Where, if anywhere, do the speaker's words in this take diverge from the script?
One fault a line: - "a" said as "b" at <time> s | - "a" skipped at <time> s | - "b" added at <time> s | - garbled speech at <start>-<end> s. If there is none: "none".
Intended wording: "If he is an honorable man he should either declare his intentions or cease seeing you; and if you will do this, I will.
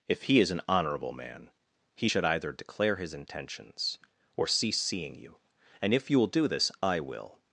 none